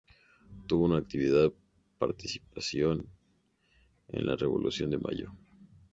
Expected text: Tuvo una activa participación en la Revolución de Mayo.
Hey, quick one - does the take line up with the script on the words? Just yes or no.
yes